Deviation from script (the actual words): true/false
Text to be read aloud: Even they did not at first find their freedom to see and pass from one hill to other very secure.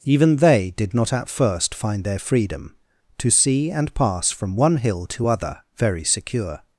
false